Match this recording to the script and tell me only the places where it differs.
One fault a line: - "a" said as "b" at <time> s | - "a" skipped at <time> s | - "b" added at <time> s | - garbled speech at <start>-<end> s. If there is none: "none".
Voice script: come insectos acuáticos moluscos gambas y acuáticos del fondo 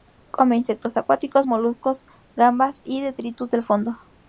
- "acuáticos" said as "detritus" at 3.0 s